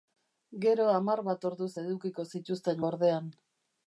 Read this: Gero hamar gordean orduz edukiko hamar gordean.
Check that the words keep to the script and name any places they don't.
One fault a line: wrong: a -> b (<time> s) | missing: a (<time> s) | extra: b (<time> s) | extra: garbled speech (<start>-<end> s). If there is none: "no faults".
wrong: gordean -> bat (1.3 s)
wrong: hamar -> zituzten (2.3 s)